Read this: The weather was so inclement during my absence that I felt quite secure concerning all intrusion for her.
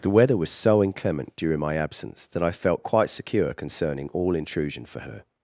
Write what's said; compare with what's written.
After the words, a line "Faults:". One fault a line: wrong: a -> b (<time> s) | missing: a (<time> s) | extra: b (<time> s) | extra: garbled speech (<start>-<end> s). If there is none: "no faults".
The weather was so inclement during my absence that I felt quite secure concerning all intrusion for her.
Faults:
no faults